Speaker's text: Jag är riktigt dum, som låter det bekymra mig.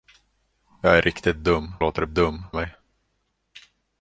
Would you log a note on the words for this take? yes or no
yes